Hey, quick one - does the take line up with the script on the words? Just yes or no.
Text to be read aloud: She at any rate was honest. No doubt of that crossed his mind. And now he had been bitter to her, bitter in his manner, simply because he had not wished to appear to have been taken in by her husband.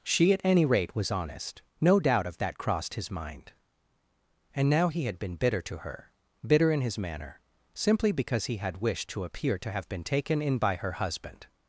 no